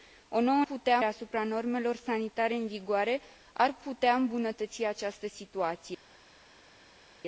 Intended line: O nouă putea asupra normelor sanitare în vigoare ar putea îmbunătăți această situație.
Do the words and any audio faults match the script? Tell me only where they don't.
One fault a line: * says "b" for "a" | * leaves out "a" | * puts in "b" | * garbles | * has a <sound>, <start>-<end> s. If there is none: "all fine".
all fine